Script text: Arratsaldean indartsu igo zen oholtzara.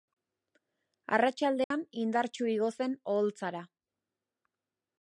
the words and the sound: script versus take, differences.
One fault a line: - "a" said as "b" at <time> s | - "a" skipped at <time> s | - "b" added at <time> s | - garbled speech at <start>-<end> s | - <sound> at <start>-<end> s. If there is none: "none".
- dropout at 1.6-1.7 s